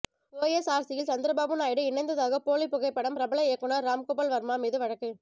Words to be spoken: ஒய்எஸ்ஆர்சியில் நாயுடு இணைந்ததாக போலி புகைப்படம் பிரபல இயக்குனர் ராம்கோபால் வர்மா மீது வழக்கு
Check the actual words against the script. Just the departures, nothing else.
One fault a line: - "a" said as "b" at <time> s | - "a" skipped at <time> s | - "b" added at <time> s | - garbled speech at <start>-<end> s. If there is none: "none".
- "சந்திரபாபு" added at 1.1 s